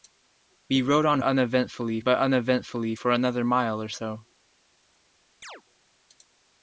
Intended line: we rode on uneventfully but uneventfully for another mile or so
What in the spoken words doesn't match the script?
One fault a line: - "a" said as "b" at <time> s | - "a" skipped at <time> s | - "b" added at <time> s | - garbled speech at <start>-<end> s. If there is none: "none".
none